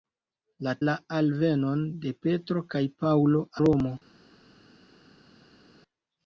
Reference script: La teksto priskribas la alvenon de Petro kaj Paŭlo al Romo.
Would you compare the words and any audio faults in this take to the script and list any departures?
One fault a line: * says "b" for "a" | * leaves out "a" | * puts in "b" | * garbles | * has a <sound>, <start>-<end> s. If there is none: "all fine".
* leaves out "teksto priskribas"
* leaves out "al"